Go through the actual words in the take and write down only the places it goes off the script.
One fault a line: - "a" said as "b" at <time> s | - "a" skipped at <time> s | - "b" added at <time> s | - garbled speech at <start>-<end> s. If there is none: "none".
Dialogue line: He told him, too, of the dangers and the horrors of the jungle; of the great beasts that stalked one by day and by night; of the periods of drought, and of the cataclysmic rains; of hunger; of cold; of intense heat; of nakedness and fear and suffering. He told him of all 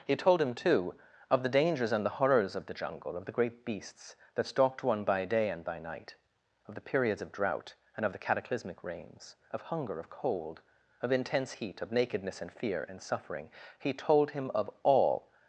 none